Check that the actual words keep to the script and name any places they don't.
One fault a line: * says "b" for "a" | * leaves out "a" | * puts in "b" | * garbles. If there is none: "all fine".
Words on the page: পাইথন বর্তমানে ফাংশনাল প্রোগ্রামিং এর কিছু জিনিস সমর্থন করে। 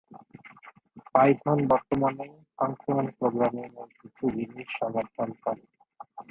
all fine